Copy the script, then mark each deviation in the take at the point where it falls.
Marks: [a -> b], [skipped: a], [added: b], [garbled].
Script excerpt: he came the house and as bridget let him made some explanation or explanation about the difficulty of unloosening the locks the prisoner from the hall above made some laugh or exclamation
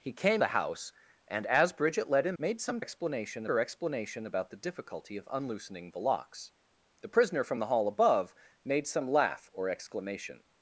he came the house and as bridget let him made some explanation or explanation about the difficulty of unloosening the locks the prisoner from the hall above made some laugh or exclamation